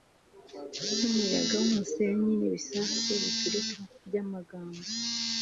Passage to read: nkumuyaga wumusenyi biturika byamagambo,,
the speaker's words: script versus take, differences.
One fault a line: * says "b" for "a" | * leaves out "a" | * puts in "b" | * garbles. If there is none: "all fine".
* puts in "nibisasu"